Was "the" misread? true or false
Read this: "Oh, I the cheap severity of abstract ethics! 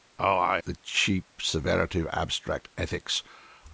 false